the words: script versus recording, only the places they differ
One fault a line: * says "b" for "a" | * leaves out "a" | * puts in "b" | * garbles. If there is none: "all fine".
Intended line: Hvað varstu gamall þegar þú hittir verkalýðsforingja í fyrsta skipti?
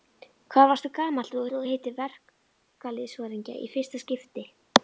* puts in "þegar"